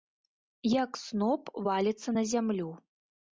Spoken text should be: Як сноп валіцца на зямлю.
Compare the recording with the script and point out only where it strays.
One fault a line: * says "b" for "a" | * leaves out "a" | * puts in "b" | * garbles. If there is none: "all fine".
all fine